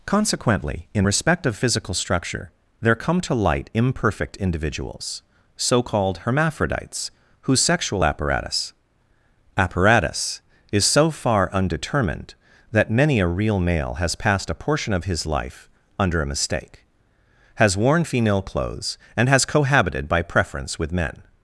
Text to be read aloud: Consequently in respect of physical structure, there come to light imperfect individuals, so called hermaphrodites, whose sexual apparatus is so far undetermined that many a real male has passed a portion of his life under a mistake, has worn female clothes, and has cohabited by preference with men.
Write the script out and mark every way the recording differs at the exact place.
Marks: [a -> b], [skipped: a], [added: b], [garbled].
Consequently in respect of physical structure, there come to light imperfect individuals, so called hermaphrodites, whose sexual apparatus [added: apparatus] is so far undetermined that many a real male has passed a portion of his life under a mistake, has worn female clothes, and has cohabited by preference with men.